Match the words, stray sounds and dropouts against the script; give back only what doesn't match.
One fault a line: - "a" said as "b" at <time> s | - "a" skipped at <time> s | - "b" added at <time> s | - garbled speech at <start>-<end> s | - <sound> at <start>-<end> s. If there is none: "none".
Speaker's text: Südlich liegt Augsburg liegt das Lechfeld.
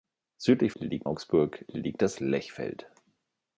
none